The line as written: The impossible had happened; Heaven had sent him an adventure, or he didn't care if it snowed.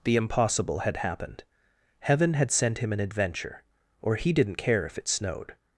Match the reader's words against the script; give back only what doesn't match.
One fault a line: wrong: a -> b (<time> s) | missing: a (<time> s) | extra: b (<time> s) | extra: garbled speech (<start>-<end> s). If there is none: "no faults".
no faults